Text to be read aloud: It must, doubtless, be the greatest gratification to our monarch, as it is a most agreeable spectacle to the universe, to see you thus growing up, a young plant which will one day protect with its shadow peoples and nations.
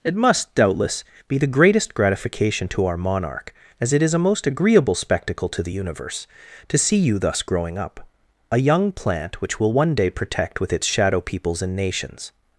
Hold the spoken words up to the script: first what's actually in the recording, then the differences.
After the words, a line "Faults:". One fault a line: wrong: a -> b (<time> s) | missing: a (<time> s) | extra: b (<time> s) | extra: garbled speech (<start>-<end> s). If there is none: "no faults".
It must, doubtless, be the greatest gratification to our monarch, as it is a most agreeable spectacle to the universe, to see you thus growing up, a young plant which will one day protect with its shadow peoples and nations.
Faults:
no faults